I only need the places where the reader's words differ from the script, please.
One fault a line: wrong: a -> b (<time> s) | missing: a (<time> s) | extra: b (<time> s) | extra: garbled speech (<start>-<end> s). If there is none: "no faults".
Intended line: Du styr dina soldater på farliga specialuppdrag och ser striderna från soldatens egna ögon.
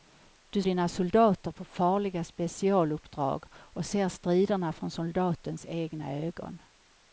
missing: styr (0.6 s)